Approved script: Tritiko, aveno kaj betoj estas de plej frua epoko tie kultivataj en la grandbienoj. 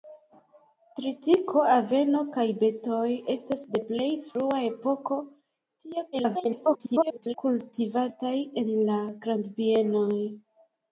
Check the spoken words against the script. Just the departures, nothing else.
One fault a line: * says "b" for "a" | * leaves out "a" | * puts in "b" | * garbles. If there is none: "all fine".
* garbles